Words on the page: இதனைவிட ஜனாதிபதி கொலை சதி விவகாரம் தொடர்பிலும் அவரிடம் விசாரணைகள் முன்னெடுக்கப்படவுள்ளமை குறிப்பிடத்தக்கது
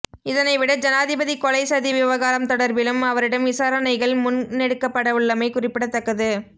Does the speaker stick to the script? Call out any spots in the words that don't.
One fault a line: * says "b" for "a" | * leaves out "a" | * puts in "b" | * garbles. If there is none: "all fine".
all fine